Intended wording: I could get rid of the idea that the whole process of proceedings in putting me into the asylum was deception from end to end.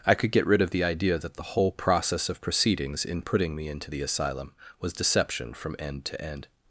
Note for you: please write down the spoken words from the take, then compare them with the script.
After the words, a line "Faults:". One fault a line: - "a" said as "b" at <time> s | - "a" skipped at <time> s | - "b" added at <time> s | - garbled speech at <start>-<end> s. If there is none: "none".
I could get rid of the idea that the whole process of proceedings in putting me into the asylum was deception from end to end.
Faults:
none